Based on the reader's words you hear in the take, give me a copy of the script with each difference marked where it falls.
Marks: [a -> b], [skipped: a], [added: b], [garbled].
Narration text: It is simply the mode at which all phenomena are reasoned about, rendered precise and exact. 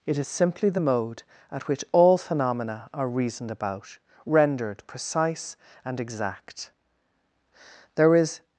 It is simply the mode at which all phenomena are reasoned about, rendered precise and exact. [added: There is]